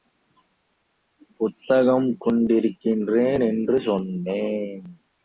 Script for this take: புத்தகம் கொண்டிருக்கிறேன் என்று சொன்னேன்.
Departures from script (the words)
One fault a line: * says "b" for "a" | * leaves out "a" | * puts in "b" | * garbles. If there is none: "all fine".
all fine